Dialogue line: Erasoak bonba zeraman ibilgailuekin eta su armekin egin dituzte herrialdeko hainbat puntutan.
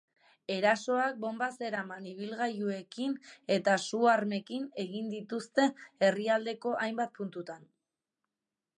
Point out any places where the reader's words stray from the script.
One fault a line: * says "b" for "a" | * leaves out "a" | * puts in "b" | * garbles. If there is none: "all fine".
all fine